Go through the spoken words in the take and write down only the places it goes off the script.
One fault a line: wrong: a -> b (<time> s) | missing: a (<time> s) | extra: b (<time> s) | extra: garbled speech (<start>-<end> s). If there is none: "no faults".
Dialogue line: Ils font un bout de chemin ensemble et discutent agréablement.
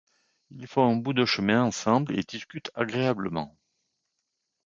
no faults